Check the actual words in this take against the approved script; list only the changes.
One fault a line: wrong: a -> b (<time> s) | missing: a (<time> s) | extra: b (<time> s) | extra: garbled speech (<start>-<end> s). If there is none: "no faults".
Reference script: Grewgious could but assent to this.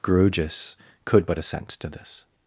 no faults